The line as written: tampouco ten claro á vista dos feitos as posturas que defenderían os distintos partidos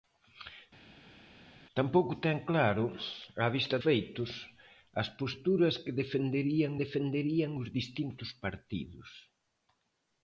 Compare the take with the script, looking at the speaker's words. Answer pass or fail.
fail